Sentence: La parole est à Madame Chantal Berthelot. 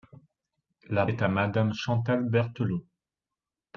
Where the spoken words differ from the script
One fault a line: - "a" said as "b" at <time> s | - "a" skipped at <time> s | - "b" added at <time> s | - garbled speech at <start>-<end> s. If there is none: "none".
- "parole" skipped at 1.1 s